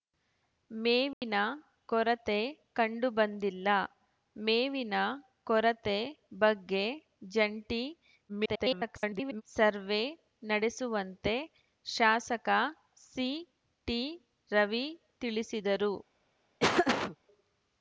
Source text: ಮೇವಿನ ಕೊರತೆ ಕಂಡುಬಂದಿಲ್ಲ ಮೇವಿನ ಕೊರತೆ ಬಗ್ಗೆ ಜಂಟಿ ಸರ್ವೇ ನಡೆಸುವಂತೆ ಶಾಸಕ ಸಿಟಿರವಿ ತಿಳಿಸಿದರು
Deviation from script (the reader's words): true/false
true